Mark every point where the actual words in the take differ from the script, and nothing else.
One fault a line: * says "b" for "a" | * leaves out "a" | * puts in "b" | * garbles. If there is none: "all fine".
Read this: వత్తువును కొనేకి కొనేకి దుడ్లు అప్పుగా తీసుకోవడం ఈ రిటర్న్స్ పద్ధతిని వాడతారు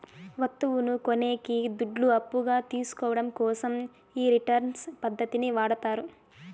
* leaves out "కొనేకి"
* puts in "కోసం"